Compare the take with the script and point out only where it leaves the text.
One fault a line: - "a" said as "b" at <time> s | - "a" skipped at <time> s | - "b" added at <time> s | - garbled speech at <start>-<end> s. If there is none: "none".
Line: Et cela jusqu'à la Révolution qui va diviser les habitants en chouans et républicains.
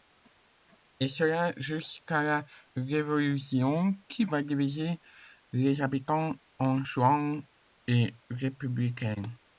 none